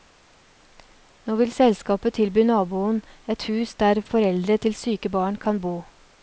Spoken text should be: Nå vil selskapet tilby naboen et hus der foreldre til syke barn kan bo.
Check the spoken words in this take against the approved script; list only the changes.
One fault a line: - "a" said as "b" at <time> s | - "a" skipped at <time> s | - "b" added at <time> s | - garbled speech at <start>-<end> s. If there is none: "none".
none